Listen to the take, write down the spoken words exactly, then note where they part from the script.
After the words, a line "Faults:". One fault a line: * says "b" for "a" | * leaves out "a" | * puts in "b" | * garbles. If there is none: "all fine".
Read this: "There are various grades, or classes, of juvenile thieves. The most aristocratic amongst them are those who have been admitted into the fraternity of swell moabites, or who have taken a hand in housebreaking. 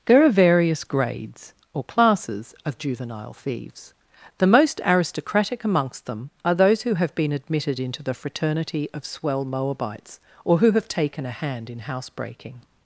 "There are various grades, or classes, of juvenile thieves. The most aristocratic amongst them are those who have been admitted into the fraternity of swell moabites, or who have taken a hand in housebreaking.
Faults:
all fine